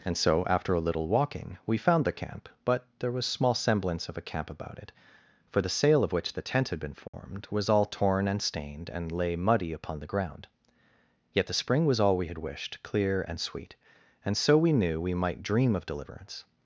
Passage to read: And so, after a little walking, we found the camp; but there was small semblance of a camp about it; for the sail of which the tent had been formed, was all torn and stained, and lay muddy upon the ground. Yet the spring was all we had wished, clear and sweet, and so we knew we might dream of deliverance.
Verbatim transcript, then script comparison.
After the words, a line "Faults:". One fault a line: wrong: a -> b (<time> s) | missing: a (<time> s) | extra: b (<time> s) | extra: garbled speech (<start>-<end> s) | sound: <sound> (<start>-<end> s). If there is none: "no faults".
And so, after a little walking, we found the camp; but there was small semblance of a camp about it; for the sail of which the tent had been formed, was all torn and stained, and lay muddy upon the ground. Yet the spring was all we had wished, clear and sweet, and so we knew we might dream of deliverance.
Faults:
sound: dropout (7.1-7.1 s)